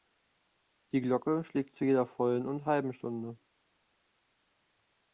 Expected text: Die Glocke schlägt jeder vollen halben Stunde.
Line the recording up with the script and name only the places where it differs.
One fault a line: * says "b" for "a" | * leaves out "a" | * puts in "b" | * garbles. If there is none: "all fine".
* puts in "zu"
* puts in "und"